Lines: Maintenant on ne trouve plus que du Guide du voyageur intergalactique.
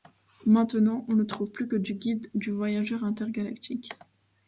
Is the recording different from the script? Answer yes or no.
no